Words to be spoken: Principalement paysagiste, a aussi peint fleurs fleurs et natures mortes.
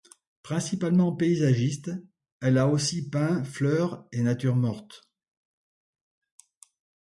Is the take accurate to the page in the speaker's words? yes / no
no